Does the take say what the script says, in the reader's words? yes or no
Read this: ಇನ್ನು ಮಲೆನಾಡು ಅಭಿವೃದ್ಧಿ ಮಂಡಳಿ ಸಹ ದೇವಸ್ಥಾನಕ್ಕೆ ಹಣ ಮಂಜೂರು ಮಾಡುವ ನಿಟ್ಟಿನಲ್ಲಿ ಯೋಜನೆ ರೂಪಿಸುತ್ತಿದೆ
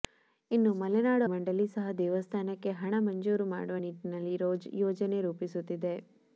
no